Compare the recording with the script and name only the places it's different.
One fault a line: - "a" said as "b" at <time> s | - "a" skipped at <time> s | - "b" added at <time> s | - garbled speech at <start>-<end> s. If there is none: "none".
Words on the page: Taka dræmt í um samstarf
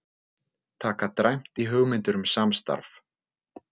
- "hugmyndir" added at 1.7 s